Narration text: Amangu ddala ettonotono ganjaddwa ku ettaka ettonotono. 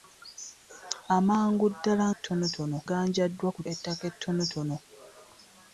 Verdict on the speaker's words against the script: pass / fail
pass